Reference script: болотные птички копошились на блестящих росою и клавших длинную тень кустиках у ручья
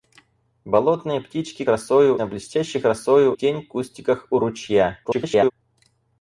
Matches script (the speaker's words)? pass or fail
fail